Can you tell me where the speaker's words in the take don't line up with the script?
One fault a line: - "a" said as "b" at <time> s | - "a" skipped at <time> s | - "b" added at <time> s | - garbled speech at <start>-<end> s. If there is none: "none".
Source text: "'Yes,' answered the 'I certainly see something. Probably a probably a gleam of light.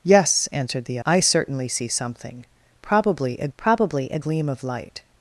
none